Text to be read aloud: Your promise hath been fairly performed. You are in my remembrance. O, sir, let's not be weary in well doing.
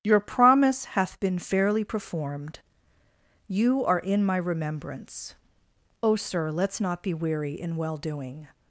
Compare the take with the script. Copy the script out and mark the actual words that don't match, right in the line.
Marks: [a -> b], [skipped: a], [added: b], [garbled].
Your promise hath been fairly performed. You are in my remembrance. O, sir, let's not be weary in well doing.